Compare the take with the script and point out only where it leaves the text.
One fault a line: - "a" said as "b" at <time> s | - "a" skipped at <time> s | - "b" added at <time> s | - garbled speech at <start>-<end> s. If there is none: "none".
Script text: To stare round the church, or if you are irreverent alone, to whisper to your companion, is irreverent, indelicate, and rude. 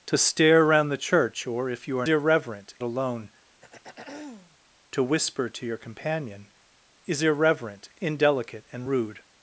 none